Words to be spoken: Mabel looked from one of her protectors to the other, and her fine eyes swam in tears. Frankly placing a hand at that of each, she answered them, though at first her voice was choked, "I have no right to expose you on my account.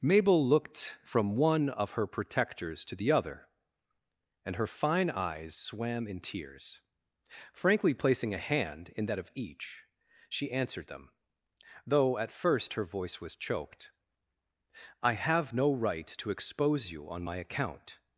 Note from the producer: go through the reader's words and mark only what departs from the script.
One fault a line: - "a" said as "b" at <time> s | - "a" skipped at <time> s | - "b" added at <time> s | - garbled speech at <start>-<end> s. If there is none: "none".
- "at" said as "in" at 8.9 s